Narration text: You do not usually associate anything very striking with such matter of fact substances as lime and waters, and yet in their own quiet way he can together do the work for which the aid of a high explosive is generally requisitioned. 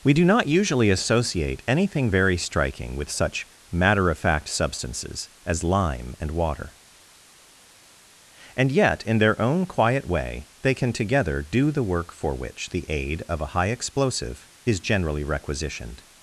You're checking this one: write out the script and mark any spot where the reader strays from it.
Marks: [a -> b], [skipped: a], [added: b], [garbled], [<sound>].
[You -> We] do not usually associate anything very striking with such matter of fact substances as lime and [waters, -> water] and yet in their own quiet way [he -> they] can together do the work for which the aid of a high explosive is generally requisitioned.